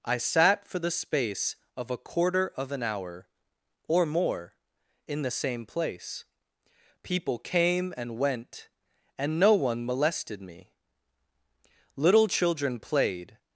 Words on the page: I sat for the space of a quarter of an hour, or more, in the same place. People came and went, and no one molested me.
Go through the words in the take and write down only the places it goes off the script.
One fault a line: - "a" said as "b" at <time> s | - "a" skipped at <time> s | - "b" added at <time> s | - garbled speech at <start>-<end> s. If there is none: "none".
- "Little children played" added at 11.9 s